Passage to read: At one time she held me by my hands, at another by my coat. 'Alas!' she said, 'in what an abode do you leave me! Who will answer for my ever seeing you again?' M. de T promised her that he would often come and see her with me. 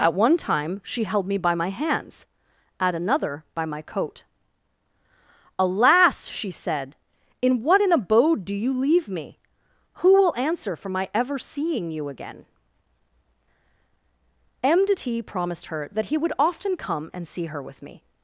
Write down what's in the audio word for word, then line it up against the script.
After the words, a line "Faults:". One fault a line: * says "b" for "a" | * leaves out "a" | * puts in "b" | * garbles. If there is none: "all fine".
At one time she held me by my hands, at another by my coat. 'Alas!' she said, 'in what an abode do you leave me! Who will answer for my ever seeing you again?' M. de T promised her that he would often come and see her with me.
Faults:
all fine